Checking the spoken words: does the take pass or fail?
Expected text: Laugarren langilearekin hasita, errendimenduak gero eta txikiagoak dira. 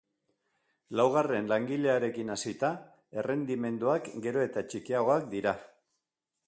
pass